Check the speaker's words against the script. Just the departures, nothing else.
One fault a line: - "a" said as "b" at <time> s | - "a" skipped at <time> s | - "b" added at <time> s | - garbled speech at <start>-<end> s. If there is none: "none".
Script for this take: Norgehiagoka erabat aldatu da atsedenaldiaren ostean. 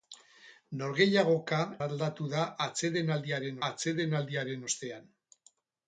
- "erabat" skipped at 1.6 s
- "atsedenaldiaren" added at 3.7 s